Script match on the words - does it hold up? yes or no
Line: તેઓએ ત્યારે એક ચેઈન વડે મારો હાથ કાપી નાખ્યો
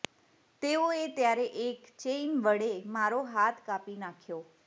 yes